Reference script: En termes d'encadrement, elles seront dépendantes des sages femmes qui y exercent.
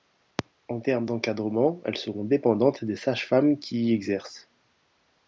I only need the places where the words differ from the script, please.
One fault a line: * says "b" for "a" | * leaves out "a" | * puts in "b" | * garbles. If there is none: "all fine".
all fine